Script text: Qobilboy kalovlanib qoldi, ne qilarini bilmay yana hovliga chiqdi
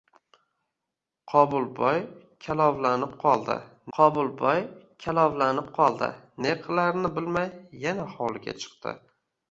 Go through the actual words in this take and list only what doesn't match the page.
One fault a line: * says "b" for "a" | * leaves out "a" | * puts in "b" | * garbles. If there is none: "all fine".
* puts in "qobilboy kalovlanib qoldi"